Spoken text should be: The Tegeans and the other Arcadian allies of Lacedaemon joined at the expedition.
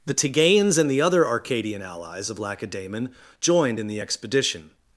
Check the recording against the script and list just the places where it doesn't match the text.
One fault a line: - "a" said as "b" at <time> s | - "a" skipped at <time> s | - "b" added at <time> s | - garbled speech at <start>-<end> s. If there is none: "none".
- "at" said as "in" at 3.8 s